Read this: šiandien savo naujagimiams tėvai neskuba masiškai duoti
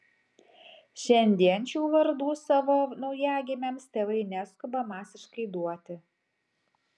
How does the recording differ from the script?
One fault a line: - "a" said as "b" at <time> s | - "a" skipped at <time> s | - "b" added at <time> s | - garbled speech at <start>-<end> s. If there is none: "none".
- "šių vardų" added at 1.7 s